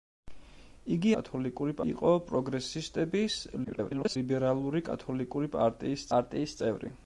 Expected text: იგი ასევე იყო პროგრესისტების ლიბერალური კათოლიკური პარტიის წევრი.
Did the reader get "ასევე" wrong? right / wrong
wrong